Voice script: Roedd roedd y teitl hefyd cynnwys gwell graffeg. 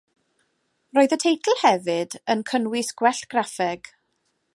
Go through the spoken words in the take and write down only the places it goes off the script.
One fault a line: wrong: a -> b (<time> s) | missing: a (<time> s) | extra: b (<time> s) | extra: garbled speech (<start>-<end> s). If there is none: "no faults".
missing: roedd (1.1 s)
extra: yn (2.4 s)